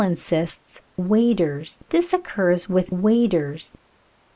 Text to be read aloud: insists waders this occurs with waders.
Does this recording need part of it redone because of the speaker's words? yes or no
no